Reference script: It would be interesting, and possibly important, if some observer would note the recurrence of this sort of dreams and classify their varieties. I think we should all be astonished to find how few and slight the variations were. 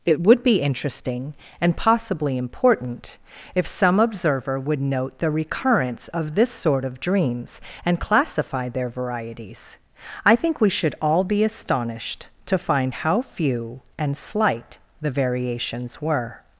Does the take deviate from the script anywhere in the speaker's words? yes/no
no